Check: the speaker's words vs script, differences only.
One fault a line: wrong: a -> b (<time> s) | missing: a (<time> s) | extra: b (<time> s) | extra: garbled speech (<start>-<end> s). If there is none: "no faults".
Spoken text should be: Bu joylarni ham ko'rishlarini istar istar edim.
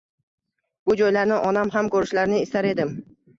extra: onam (1.5 s)
missing: istar (2.7 s)